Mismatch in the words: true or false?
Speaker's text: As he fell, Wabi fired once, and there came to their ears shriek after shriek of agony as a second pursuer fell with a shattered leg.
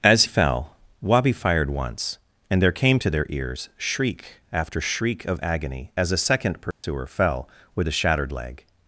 true